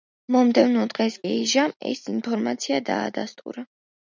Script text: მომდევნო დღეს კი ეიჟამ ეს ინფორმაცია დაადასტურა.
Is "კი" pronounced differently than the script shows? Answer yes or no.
yes